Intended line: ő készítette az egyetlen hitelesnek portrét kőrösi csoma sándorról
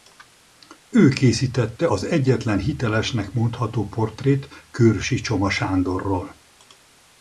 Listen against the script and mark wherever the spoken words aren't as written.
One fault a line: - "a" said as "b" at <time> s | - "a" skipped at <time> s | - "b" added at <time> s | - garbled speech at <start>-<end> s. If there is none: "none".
- "mondható" added at 3.3 s